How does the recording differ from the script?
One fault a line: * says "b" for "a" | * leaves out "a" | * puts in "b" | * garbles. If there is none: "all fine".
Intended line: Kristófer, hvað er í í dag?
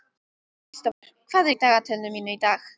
* puts in "dagatalinu mínu"